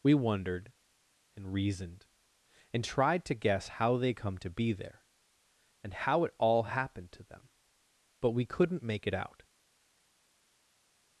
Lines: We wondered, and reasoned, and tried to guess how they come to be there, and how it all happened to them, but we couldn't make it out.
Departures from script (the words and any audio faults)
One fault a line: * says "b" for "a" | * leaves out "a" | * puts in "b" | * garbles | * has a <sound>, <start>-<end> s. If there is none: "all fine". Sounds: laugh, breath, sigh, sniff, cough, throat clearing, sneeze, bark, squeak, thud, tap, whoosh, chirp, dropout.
all fine